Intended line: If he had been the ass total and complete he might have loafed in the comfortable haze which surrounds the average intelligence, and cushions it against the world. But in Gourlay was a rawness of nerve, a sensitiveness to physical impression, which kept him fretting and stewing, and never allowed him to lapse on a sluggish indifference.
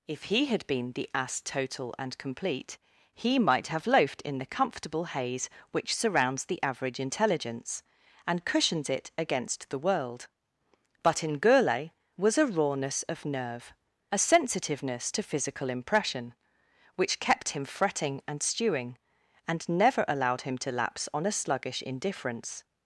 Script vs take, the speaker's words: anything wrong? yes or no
no